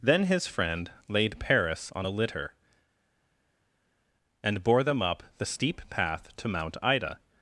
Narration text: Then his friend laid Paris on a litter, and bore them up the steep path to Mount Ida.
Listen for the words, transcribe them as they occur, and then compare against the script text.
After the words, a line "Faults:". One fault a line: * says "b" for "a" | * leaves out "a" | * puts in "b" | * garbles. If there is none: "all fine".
Then his friend laid Paris on a litter, and bore them up the steep path to Mount Ida.
Faults:
all fine